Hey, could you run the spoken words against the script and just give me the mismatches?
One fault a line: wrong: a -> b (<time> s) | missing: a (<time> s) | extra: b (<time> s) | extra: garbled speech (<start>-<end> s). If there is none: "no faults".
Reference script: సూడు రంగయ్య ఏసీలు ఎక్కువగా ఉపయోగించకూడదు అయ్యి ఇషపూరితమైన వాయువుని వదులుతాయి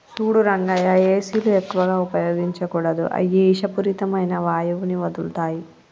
no faults